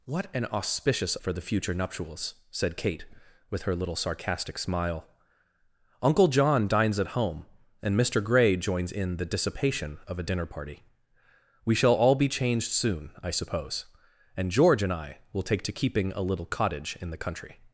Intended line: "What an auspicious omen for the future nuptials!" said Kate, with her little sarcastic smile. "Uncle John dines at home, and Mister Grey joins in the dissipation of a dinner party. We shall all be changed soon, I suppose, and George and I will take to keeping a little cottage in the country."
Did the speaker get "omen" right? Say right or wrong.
wrong